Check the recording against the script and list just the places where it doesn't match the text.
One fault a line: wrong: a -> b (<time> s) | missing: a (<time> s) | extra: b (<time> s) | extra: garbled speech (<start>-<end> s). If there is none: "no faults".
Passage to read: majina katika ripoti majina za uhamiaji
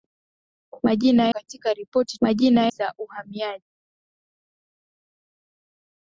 no faults